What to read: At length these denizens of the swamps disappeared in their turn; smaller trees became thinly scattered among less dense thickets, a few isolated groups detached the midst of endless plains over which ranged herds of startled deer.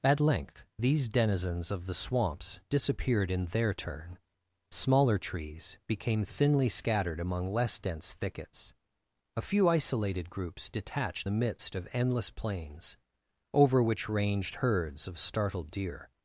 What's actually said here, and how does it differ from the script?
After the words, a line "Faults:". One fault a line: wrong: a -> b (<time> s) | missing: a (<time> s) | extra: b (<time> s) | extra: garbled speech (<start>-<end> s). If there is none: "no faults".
At length these denizens of the swamps disappeared in their turn; smaller trees became thinly scattered among less dense thickets, a few isolated groups detached the midst of endless plains over which ranged herds of startled deer.
Faults:
no faults